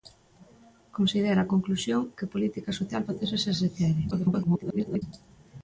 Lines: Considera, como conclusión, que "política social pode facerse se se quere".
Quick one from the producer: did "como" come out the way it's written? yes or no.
no